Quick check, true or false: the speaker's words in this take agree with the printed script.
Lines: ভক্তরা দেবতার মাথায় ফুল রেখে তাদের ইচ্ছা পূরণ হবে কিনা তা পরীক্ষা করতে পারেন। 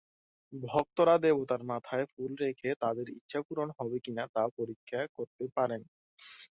true